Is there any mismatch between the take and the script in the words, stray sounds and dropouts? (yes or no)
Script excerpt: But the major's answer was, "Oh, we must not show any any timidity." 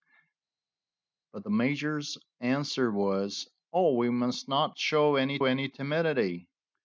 no